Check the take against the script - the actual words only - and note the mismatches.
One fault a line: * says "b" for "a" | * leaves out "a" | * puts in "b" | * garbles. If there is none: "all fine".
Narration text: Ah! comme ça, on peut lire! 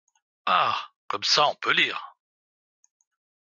all fine